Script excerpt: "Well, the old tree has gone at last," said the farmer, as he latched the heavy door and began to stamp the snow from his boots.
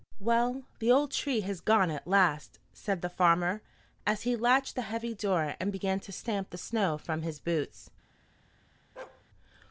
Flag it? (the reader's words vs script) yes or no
no